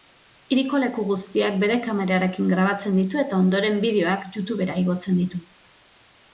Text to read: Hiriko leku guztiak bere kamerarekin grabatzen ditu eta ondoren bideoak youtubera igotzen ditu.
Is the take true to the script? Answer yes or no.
yes